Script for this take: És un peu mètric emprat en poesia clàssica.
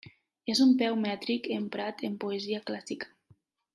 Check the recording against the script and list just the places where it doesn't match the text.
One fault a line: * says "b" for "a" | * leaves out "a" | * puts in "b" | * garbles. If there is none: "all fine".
all fine